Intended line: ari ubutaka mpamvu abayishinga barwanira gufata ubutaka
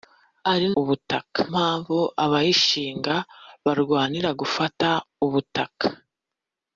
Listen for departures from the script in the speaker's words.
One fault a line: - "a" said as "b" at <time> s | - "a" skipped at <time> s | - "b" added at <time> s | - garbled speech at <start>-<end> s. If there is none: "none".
none